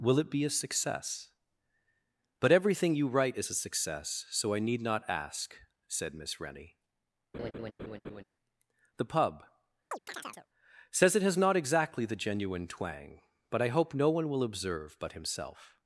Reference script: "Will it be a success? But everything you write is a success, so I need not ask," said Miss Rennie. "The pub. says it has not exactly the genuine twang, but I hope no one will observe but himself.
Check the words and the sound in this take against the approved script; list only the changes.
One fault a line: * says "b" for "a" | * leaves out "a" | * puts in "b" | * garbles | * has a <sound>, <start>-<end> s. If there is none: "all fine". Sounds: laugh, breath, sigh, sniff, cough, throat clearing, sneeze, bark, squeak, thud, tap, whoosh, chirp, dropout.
* has a laugh, 7.3-8.2 s
* has a chirp, 9.9-10.5 s